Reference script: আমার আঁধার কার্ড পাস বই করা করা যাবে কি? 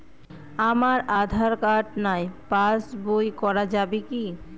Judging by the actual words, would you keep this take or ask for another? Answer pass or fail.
fail